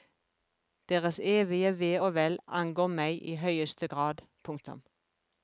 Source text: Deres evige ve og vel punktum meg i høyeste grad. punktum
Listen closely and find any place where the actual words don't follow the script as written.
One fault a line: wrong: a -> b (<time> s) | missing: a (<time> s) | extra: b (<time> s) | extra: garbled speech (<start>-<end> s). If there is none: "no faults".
wrong: punktum -> angår (2.5 s)